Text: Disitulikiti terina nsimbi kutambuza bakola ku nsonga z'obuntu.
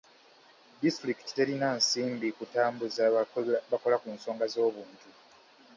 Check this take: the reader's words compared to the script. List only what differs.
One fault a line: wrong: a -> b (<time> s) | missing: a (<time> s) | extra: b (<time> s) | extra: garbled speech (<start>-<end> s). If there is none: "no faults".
no faults